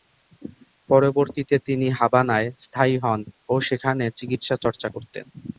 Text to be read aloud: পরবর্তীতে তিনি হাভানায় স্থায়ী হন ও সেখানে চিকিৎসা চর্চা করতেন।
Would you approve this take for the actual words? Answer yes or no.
yes